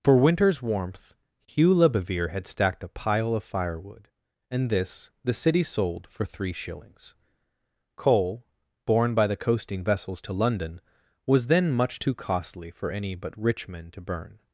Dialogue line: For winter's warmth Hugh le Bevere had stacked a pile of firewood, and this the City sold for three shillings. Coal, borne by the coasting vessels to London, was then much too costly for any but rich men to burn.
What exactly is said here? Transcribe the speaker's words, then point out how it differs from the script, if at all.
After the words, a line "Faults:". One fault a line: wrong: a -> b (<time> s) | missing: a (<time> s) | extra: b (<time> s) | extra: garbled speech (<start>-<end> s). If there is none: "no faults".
For winter's warmth Hugh le Bevere had stacked a pile of firewood, and this the City sold for three shillings. Coal, borne by the coasting vessels to London, was then much too costly for any but rich men to burn.
Faults:
no faults